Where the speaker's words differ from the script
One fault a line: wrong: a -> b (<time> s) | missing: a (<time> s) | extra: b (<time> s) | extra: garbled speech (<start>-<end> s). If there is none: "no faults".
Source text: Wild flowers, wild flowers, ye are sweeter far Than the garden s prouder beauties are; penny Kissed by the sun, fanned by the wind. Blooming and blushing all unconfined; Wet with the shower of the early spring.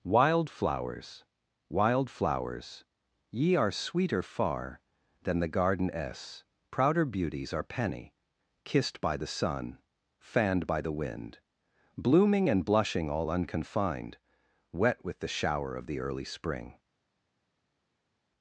no faults